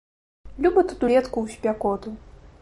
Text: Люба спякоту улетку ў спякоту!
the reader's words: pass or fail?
fail